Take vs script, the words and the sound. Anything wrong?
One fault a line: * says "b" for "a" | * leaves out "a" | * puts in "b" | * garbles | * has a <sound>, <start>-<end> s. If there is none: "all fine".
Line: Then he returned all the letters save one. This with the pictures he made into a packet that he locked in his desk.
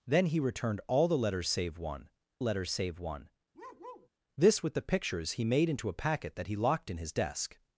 * puts in "letters save one"
* has a bark, 3.5-4.1 s